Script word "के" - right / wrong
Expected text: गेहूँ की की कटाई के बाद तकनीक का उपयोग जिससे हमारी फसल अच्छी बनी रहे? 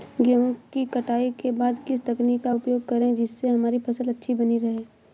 right